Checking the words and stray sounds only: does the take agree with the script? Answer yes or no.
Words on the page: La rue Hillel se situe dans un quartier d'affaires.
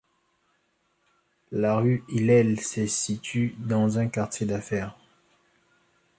yes